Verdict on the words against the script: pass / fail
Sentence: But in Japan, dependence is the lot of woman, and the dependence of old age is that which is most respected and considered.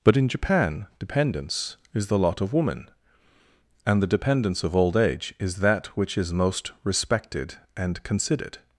pass